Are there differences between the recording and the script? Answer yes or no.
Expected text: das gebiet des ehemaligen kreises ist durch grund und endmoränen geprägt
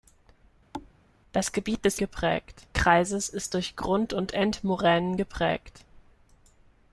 yes